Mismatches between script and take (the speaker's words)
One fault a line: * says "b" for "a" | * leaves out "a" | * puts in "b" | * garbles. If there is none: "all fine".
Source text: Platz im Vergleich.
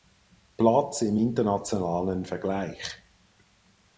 * puts in "internationalen"